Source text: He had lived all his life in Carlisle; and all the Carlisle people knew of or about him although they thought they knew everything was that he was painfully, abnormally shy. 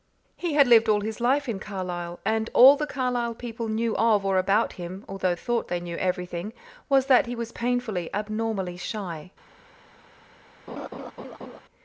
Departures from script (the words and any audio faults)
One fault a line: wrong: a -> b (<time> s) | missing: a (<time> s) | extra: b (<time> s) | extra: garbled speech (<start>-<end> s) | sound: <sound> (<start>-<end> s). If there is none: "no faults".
missing: they (5.3 s)
sound: laugh (10.7-11.6 s)